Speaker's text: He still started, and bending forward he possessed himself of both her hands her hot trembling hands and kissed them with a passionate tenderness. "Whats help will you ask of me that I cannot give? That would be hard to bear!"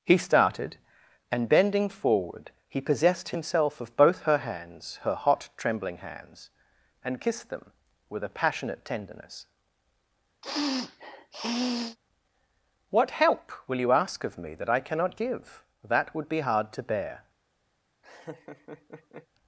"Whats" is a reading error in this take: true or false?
true